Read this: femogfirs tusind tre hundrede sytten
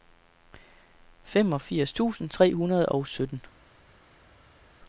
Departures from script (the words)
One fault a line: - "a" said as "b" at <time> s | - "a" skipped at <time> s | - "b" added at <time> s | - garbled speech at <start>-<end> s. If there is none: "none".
- "og" added at 2.9 s